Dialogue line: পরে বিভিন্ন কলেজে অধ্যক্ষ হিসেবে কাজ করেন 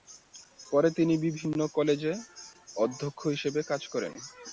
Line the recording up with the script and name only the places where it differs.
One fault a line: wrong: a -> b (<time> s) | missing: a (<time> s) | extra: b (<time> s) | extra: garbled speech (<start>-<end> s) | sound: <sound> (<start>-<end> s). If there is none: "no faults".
extra: তিনি (1.0 s)